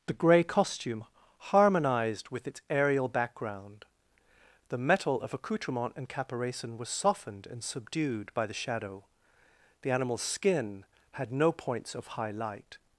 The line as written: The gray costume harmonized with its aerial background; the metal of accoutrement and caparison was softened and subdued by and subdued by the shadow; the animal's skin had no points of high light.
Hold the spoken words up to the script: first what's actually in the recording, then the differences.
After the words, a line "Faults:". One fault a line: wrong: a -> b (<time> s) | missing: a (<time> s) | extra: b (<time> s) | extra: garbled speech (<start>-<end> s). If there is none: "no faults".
The gray costume harmonized with its aerial background; the metal of accoutrement and caparison was softened and subdued by the shadow; the animal's skin had no points of high light.
Faults:
missing: and subdued by (8.5 s)